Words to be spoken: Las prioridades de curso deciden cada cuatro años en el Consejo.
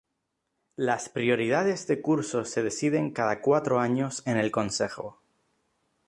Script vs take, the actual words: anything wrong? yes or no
yes